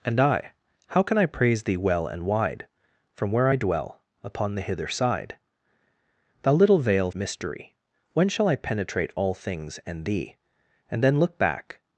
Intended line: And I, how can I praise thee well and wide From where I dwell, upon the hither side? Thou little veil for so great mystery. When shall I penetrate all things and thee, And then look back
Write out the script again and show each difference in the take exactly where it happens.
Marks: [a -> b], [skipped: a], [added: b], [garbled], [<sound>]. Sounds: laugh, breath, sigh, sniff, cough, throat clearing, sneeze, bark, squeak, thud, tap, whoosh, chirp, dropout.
And I, how can I praise thee well and wide From where I dwell, upon the hither side? Thou little veil [skipped: for so great] mystery. When shall I penetrate all things and thee, And then look back